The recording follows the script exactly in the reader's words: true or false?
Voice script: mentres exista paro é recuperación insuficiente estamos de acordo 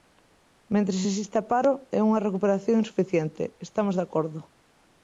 false